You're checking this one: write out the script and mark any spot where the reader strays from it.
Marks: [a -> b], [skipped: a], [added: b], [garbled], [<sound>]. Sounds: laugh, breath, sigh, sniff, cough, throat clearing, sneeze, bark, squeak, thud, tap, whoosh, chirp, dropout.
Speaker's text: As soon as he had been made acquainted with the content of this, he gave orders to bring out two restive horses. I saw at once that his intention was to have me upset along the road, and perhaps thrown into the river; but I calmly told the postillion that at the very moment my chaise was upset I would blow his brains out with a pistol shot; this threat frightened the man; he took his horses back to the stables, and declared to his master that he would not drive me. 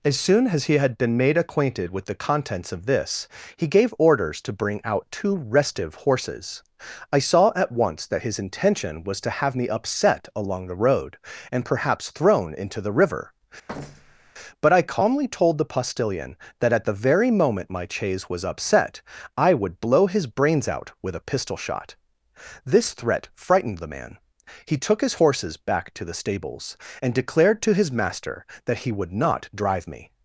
As soon as he had been made acquainted with the [content -> contents] of this, he gave orders to bring out two restive horses. I saw at once that his intention was to have me upset along the road, and perhaps thrown into the river; [thud] but I calmly told the postillion that at the very moment my chaise was upset I would blow his brains out with a pistol shot; this threat frightened the man; he took his horses back to the stables, and declared to his master that he would not drive me.